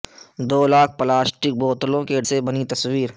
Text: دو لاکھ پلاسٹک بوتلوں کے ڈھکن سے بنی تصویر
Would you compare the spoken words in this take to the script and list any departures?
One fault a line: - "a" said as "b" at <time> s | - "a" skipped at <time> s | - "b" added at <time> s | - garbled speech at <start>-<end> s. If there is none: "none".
- "ڈھکن" skipped at 2.2 s